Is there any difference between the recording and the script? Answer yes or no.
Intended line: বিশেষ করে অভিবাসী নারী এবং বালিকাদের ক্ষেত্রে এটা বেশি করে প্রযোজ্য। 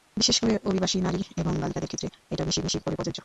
yes